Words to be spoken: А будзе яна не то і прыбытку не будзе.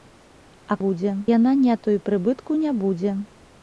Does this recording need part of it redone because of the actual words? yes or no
no